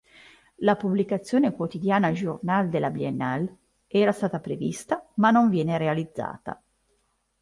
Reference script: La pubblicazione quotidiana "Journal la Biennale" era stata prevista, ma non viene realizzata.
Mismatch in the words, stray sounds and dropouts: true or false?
true